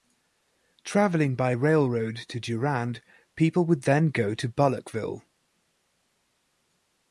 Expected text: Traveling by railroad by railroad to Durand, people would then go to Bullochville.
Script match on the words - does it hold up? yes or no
no